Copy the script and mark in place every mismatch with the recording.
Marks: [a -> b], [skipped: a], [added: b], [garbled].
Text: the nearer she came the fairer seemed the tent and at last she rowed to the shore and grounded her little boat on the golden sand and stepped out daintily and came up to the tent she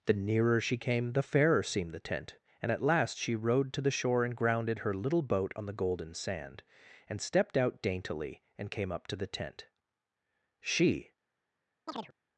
the nearer she came the fairer seemed the tent and at last she rowed to the shore and grounded her little boat on the golden sand and stepped out daintily and came up to the tent she